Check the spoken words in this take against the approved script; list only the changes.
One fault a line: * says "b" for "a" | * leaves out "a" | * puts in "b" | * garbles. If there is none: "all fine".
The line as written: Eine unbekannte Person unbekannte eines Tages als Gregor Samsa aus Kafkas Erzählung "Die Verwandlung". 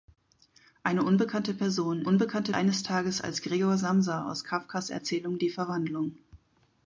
all fine